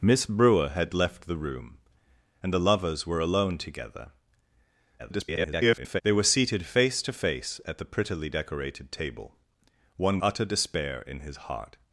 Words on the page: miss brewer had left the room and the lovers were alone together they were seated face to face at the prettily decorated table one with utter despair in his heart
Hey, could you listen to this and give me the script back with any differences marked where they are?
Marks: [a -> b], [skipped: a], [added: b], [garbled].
miss brewer had left the room and the lovers were alone together [garbled] they were seated face to face at the prettily decorated table one [skipped: with] utter despair in his heart